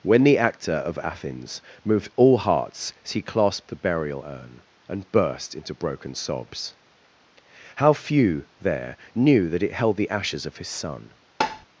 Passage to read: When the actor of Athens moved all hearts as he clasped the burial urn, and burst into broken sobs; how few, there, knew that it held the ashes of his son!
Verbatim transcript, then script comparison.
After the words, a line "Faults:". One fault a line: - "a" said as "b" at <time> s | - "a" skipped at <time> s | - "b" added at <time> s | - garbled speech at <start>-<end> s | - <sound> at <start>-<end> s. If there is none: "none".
When the actor of Athens moved all hearts as he clasped the burial urn, and burst into broken sobs; how few, there, knew that it held the ashes of his son!
Faults:
- tap at 11.4-11.7 s